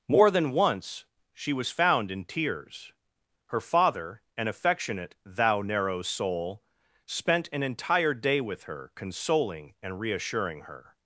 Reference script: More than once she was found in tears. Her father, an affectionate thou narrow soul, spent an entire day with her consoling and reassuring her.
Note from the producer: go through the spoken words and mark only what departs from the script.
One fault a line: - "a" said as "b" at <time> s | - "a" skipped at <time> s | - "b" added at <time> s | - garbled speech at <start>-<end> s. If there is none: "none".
none